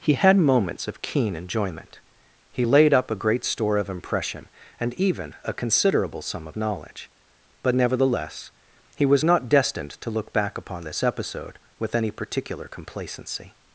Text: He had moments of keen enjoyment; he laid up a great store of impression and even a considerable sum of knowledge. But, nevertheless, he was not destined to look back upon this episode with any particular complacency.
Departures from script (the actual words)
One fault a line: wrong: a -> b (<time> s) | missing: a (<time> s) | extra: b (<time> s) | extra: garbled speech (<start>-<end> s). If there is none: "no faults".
no faults